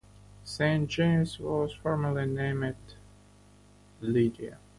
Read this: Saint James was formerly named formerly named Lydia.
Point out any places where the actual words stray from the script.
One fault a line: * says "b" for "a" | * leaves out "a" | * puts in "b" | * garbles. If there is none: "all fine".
* leaves out "formerly named"